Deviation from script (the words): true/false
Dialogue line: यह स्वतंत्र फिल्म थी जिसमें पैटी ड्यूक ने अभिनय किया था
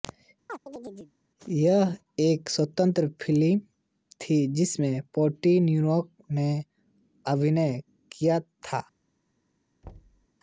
true